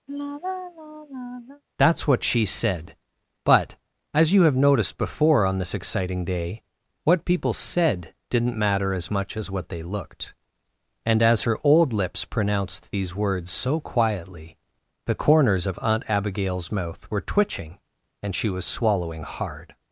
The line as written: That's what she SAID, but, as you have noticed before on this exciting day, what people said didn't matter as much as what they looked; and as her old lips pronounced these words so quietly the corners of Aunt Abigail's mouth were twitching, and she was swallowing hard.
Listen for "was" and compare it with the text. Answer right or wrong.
right